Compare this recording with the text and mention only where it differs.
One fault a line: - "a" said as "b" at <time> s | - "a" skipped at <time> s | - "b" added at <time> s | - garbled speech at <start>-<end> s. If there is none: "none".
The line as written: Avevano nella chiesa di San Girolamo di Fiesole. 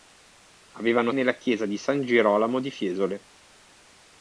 none